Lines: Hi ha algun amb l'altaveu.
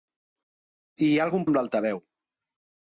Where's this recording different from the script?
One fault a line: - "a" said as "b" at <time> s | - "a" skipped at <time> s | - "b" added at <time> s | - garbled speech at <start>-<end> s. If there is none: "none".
none